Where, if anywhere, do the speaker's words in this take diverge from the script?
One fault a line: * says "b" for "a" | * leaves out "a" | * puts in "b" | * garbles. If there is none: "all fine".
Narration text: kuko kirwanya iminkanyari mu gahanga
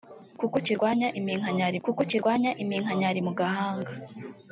* puts in "kuko kirwanya iminkanyari"